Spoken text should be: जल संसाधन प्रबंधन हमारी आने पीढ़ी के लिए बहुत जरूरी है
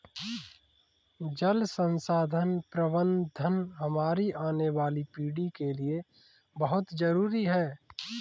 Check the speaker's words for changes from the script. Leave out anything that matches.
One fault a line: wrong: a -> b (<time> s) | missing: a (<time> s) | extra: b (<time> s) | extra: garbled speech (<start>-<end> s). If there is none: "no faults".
extra: वाली (4.8 s)